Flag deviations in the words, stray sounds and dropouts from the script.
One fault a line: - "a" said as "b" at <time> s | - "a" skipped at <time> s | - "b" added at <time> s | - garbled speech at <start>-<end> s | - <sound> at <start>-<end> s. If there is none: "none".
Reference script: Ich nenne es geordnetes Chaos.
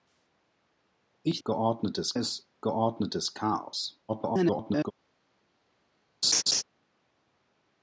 - "nenne" said as "geordnetes" at 1.4 s
- garbled speech at 4.1-4.9 s
- laugh at 6.2-6.6 s